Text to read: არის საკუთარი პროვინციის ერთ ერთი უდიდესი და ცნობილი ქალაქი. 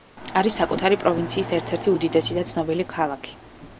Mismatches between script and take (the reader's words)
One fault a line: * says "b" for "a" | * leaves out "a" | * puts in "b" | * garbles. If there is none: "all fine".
all fine